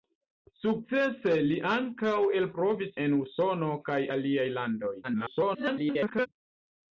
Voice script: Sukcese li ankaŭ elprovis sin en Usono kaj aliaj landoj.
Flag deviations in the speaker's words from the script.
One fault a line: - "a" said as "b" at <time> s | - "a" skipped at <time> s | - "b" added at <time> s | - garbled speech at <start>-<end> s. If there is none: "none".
- "sin" skipped at 3.0 s
- garbled speech at 5.0-6.3 s